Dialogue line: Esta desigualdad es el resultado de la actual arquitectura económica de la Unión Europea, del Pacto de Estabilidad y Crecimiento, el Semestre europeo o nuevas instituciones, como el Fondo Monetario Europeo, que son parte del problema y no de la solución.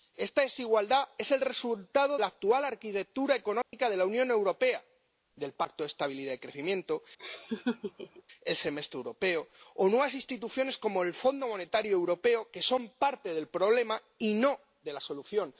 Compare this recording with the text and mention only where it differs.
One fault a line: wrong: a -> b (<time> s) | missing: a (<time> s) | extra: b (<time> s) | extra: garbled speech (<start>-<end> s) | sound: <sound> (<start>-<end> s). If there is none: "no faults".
missing: de (2.2 s)
sound: dropout (3.6-3.7 s)
sound: laugh (7.2-8.2 s)